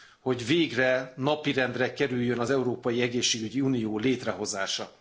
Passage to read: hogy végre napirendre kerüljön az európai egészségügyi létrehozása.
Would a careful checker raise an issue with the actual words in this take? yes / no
yes